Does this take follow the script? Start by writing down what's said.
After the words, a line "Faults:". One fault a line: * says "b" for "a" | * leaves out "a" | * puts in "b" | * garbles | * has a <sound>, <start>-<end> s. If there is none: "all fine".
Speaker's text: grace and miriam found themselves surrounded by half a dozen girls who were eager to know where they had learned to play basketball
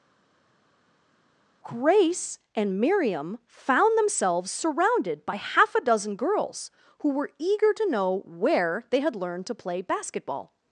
grace and miriam found themselves surrounded by half a dozen girls who were eager to know where they had learned to play basketball
Faults:
all fine